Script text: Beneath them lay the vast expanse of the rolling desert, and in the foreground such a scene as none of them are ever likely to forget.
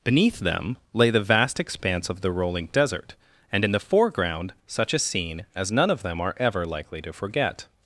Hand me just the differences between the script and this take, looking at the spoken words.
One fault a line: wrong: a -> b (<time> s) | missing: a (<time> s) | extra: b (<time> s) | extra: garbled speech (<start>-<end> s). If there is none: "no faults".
no faults